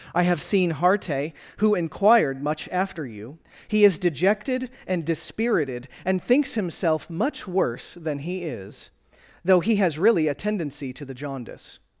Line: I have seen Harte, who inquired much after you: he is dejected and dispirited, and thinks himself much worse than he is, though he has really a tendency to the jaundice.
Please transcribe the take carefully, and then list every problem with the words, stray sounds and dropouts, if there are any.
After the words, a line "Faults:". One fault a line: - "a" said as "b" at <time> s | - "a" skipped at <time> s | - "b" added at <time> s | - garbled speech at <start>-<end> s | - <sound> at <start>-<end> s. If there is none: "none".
I have seen Harte, who inquired much after you: he is dejected and dispirited, and thinks himself much worse than he is, though he has really a tendency to the jaundice.
Faults:
none